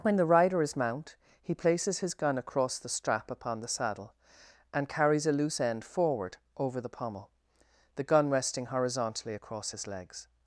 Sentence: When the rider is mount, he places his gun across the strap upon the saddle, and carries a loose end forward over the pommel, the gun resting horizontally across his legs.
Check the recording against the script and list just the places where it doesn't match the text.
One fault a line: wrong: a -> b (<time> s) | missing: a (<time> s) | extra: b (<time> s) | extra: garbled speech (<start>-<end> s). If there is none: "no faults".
no faults